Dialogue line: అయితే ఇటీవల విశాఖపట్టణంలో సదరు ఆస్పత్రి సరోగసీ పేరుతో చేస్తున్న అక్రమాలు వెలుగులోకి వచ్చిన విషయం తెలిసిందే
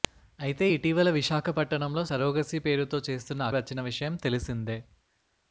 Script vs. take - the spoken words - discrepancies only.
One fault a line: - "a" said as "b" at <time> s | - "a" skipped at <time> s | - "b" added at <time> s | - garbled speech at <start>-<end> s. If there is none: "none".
- "సదరు ఆస్పత్రి" skipped at 2.0 s
- "అక్రమాలు వెలుగులోకి" skipped at 3.5 s